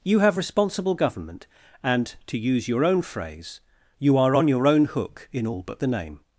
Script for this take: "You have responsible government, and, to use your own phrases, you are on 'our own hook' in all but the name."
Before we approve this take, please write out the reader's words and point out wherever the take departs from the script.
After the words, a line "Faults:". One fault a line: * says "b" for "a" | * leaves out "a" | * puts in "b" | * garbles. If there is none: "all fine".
"You have responsible government, and, to use your own phrase, you are on 'your own hook' in all but the name."
Faults:
* says "phrase" for "phrases"
* says "your" for "our"